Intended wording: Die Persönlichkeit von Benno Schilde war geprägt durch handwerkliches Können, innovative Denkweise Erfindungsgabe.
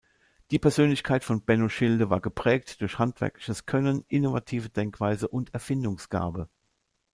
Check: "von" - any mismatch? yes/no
no